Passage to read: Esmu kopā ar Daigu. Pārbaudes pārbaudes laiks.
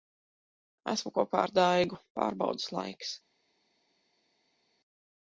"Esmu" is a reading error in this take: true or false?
false